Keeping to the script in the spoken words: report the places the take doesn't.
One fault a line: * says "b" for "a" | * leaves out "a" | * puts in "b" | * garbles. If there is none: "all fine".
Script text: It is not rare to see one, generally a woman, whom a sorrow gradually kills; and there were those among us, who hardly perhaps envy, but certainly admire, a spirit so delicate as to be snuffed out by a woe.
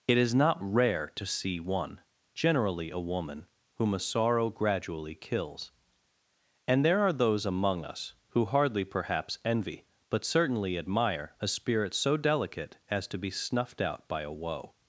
* says "are" for "were"